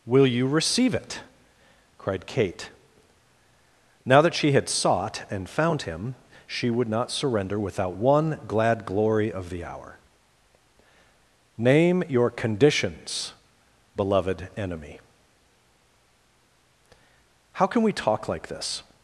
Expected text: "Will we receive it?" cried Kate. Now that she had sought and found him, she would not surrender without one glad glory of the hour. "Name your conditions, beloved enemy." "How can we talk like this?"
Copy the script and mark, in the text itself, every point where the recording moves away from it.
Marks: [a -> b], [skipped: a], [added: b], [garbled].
"Will [we -> you] receive it?" cried Kate. Now that she had sought and found him, she would not surrender without one glad glory of the hour. "Name your conditions, beloved enemy." "How can we talk like this?"